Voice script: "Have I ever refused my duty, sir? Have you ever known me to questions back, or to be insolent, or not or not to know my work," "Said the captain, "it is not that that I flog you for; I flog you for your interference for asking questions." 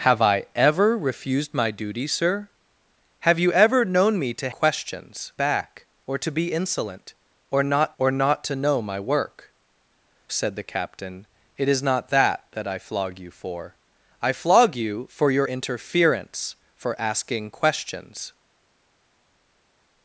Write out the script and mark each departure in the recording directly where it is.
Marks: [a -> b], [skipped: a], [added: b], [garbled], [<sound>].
"Have I ever refused my duty, sir? Have you ever known me to questions back, or to be insolent, or not or not to know my work," "Said the captain, "it is not that that I flog you for; I flog you for your interference for asking questions."